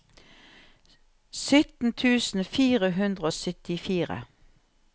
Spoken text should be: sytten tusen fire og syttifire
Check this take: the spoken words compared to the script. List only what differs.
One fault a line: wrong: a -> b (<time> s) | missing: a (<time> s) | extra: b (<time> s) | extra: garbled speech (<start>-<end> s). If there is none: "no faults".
extra: hundre (3.0 s)